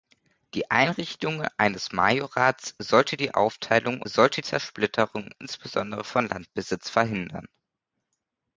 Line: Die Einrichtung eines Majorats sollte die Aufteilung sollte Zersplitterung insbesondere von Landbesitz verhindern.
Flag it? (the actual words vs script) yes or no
no